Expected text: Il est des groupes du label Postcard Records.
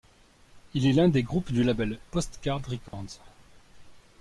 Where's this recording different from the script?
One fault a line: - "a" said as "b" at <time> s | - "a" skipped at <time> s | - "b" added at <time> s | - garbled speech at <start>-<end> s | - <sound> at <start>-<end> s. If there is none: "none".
- "l'un" added at 0.9 s
- dropout at 2.9-2.9 s